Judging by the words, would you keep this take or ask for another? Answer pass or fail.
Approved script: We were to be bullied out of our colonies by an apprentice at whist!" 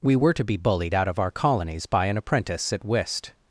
pass